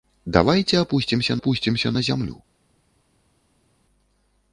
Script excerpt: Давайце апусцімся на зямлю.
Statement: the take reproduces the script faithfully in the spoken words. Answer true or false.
false